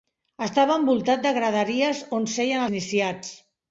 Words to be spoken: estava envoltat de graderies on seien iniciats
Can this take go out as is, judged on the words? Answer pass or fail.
pass